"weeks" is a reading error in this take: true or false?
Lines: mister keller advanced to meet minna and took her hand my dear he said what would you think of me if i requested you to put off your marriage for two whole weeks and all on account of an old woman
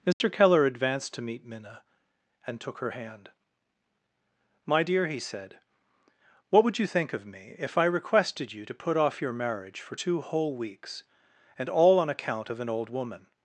false